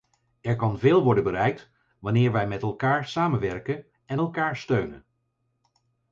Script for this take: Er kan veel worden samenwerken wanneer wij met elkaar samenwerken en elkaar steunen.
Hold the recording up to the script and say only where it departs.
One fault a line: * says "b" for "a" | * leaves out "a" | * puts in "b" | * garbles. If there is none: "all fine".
* says "bereikt" for "samenwerken"